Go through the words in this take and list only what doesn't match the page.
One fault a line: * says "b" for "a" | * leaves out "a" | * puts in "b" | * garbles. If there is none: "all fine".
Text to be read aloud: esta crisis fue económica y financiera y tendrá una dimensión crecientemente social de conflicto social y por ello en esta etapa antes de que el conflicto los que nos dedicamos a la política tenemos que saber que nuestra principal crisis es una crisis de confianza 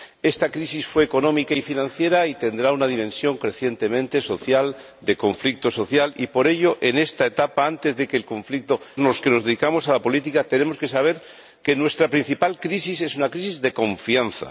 all fine